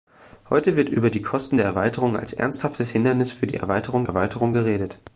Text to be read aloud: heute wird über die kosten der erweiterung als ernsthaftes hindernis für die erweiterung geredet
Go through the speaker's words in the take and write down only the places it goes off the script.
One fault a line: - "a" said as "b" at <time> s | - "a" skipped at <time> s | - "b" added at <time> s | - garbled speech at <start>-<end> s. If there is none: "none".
- "erweiterung" added at 4.0 s